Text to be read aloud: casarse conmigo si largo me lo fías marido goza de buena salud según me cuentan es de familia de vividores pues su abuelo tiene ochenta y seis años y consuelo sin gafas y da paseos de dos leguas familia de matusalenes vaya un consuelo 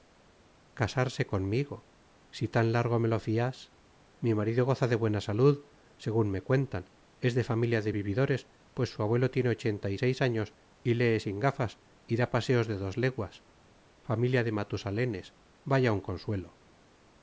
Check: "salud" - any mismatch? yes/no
no